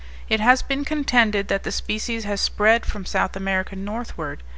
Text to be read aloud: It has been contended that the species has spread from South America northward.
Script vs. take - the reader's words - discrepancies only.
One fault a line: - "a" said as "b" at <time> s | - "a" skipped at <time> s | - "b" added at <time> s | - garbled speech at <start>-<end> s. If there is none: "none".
none